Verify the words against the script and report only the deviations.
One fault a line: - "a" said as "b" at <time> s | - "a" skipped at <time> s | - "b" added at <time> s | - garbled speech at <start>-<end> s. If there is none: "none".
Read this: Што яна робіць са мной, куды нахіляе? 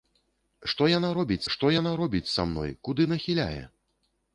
- "што яна робіць" added at 1.6 s